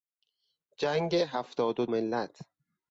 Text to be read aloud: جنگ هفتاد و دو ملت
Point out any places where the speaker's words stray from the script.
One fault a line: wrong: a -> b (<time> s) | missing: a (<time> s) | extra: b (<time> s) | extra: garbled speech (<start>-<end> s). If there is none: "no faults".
missing: دو (1.9 s)